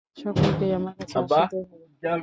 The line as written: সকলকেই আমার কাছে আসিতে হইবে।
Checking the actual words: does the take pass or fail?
pass